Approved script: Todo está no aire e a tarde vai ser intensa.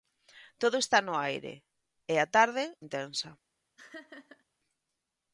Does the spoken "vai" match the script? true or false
false